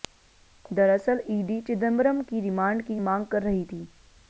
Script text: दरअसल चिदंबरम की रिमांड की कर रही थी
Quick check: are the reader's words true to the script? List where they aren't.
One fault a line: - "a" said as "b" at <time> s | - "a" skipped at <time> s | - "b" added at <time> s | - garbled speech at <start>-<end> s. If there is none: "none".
- "ईडी" added at 1.3 s
- "मांग" added at 3.0 s